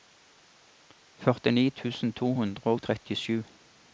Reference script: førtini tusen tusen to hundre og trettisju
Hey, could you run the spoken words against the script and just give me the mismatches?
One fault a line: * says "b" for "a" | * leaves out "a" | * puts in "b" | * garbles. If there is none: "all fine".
* leaves out "tusen"